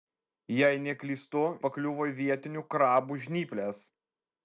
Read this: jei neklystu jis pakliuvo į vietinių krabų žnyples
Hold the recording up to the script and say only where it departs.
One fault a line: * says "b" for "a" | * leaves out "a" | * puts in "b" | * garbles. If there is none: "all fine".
* leaves out "jis"